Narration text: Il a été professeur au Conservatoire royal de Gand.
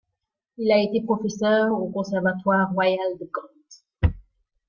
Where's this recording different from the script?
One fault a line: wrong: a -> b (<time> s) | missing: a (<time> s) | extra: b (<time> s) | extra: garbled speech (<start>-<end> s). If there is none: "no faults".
no faults